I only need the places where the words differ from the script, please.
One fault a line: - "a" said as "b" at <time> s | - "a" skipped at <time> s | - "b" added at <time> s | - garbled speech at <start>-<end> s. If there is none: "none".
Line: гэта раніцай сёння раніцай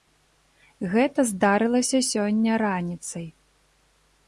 - "раніцай" said as "здарылася" at 1.3 s